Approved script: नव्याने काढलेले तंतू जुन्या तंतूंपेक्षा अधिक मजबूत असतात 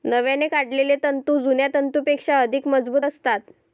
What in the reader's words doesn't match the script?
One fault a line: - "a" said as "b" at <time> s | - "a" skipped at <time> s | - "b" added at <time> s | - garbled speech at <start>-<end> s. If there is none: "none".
none